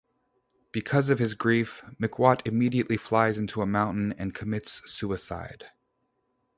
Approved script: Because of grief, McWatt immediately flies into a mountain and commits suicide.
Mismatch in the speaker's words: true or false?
true